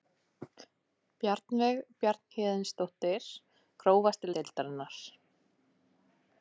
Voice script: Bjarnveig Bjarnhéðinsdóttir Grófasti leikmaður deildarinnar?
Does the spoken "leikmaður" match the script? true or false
false